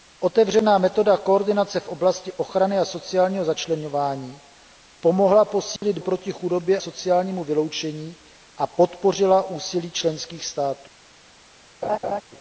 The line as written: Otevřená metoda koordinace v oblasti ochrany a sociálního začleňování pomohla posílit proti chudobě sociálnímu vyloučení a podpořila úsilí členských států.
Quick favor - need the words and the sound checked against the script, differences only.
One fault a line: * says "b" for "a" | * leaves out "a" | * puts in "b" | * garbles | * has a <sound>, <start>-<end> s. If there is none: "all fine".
* has a dropout, 5.8-5.8 s
* has a laugh, 11.8-12.2 s